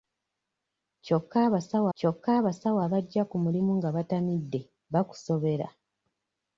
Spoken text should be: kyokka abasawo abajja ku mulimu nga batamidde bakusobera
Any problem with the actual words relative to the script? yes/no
yes